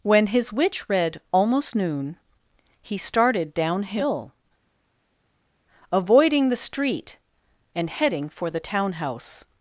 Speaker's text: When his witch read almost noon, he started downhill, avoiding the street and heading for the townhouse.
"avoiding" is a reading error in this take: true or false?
false